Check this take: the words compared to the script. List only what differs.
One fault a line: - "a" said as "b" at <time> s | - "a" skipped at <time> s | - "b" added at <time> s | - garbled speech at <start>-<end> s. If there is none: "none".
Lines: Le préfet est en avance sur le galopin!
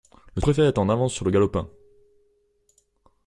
none